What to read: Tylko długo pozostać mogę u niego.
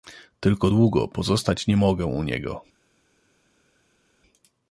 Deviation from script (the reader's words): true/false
true